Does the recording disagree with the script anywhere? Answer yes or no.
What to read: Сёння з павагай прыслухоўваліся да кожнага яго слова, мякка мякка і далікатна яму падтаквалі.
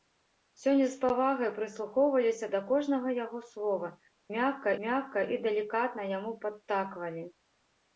no